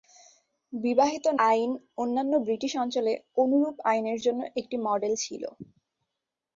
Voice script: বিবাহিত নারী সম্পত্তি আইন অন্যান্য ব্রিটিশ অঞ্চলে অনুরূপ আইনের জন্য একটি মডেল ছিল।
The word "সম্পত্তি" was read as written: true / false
false